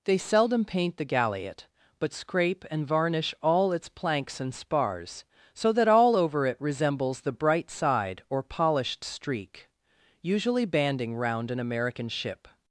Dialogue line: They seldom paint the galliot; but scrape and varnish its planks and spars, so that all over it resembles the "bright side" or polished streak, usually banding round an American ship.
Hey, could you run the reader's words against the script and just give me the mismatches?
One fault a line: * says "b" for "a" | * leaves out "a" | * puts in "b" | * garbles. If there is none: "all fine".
* puts in "all"